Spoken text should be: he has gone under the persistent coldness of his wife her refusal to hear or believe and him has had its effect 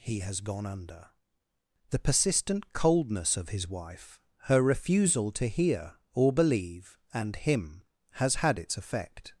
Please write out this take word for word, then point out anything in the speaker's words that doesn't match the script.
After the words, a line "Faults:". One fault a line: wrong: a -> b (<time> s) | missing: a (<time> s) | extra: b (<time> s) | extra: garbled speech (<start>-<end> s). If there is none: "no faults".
he has gone under the persistent coldness of his wife her refusal to hear or believe and him has had its effect
Faults:
no faults